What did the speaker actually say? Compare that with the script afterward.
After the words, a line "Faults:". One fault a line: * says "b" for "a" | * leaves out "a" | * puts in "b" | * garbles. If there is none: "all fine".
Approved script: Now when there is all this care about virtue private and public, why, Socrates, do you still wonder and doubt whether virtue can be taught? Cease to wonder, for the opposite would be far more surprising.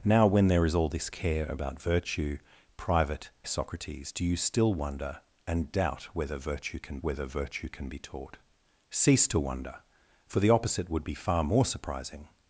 Now when there is all this care about virtue private Socrates, do you still wonder and doubt whether virtue can whether virtue can be taught? Cease to wonder, for the opposite would be far more surprising.
Faults:
* leaves out "and public why"
* puts in "whether virtue can"